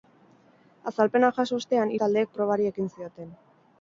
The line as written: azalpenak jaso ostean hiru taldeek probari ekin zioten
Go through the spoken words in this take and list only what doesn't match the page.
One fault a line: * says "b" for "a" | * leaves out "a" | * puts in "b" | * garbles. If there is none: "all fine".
* leaves out "hiru"